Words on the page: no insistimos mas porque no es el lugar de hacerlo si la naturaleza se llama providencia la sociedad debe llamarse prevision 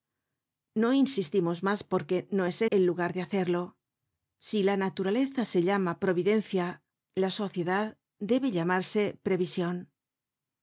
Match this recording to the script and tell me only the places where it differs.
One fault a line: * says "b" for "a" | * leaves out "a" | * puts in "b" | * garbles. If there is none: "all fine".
all fine